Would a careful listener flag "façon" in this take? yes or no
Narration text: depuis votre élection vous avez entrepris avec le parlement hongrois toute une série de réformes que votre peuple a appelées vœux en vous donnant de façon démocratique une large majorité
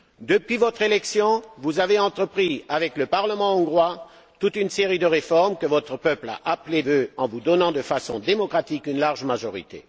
no